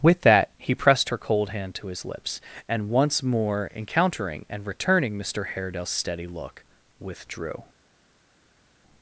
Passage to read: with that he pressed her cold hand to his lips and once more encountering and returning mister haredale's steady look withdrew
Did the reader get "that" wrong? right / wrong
right